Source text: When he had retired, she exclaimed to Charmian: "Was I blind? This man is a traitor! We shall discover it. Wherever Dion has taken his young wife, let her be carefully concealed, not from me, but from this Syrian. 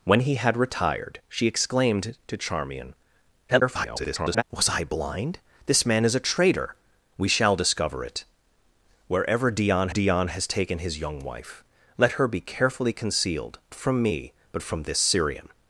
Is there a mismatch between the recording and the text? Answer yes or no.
yes